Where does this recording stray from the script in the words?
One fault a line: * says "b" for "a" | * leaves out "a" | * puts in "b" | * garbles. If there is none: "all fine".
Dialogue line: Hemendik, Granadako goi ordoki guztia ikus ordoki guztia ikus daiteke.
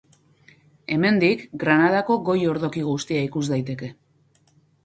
* leaves out "ordoki guztia ikus"